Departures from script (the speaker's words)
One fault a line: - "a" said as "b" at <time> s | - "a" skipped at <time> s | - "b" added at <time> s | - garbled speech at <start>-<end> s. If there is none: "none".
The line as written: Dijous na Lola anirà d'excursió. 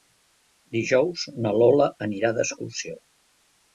none